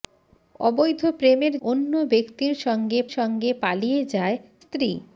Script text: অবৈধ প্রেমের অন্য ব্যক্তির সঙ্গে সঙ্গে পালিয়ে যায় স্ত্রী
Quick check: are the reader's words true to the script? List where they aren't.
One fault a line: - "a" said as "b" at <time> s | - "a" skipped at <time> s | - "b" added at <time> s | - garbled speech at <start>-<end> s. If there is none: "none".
none